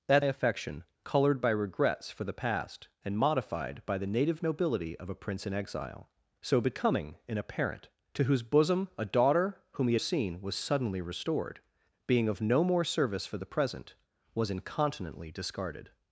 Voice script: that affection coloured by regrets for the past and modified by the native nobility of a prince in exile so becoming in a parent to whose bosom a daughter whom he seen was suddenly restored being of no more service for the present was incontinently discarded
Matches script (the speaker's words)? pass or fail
pass